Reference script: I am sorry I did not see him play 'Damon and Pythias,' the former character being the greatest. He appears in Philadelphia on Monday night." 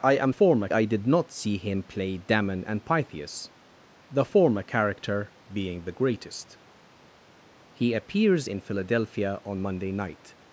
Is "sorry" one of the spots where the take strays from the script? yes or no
yes